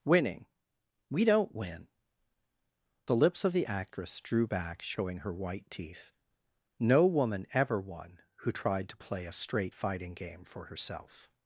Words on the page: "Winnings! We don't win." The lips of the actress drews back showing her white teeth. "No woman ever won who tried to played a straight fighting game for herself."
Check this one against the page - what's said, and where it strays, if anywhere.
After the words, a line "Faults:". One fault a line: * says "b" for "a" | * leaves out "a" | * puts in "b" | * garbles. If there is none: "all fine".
"Winning! We don't win." The lips of the actress drew back showing her white teeth. "No woman ever won who tried to play a straight fighting game for herself."
Faults:
* says "Winning" for "Winnings"
* says "drew" for "drews"
* says "play" for "played"